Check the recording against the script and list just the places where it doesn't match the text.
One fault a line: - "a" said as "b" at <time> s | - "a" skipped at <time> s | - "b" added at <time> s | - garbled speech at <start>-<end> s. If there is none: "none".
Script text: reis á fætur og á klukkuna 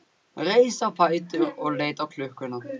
- "leit" added at 1.8 s